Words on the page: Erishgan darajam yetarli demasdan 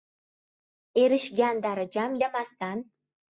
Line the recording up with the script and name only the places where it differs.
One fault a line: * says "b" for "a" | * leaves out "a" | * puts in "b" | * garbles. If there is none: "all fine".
* leaves out "yetarli"